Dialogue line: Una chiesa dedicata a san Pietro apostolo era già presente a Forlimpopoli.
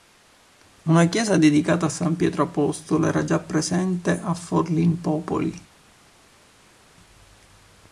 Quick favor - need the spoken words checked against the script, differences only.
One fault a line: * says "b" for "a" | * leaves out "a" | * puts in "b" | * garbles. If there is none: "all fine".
all fine